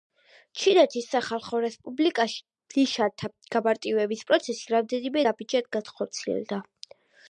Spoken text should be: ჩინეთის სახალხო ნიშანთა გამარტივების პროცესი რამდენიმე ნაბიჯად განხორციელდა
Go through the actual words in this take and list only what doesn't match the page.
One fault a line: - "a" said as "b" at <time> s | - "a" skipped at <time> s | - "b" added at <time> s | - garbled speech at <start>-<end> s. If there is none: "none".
- "რესპუბლიკაში" added at 1.6 s